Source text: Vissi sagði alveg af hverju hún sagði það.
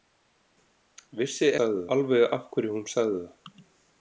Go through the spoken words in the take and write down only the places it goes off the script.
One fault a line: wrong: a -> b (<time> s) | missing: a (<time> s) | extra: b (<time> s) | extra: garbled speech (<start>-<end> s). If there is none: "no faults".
no faults